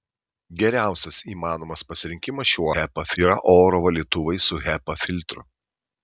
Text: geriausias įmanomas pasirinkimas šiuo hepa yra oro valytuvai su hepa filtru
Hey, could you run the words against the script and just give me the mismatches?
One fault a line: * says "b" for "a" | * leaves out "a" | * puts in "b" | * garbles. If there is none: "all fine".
all fine